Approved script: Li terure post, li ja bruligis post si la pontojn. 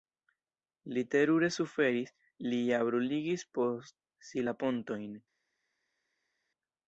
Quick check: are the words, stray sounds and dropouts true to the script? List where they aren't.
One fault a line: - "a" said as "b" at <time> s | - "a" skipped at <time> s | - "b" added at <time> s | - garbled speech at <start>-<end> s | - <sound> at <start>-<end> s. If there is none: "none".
- "post" said as "suferis" at 1.6 s